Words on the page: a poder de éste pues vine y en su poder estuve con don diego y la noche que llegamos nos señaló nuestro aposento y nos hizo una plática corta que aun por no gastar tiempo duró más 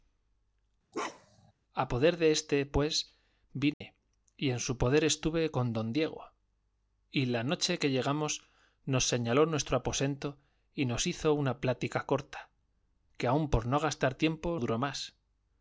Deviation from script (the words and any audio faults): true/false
true